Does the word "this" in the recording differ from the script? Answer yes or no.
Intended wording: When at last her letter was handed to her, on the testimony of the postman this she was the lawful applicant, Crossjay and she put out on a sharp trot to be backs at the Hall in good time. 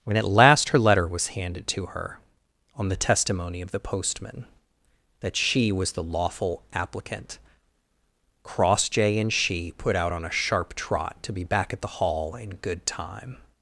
yes